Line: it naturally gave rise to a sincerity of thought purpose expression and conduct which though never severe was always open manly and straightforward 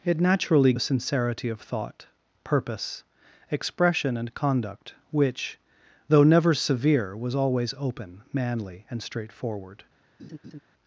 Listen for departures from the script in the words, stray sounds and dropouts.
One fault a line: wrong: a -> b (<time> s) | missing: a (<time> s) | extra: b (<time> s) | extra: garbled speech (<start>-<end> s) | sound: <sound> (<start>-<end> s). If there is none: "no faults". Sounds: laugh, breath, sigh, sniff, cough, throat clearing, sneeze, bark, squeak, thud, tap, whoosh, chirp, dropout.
missing: gave rise to (0.7 s)
sound: laugh (10.2-10.6 s)